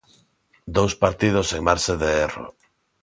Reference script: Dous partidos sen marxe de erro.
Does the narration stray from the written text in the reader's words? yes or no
no